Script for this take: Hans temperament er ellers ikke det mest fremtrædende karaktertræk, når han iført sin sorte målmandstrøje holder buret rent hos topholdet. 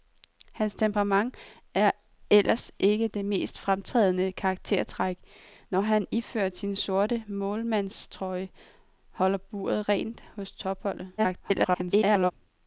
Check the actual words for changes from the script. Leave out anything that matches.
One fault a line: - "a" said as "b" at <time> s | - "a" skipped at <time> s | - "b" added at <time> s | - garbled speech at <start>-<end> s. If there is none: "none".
- garbled speech at 11.2-12.3 s